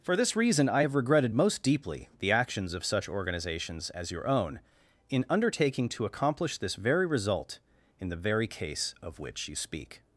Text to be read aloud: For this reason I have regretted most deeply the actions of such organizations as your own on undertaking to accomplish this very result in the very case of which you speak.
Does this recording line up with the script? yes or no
no